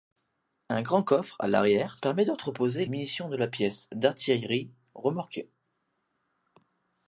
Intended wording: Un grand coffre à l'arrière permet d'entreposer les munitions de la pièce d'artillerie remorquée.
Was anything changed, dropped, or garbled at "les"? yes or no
yes